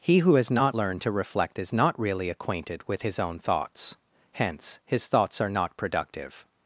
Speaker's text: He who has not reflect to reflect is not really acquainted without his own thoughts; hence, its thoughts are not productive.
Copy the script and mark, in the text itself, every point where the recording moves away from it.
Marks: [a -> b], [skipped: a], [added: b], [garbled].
He who has not [reflect -> learned] to reflect is not really acquainted [without -> with] his own thoughts; hence, [its -> his] thoughts are not productive.